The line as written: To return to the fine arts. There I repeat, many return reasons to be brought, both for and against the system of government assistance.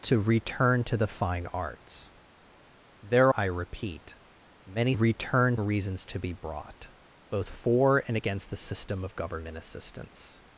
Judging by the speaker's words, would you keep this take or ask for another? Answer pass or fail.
pass